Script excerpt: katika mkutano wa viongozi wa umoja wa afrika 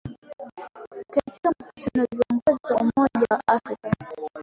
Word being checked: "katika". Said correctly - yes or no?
yes